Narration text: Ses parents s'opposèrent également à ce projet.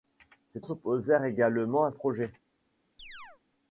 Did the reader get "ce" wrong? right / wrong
wrong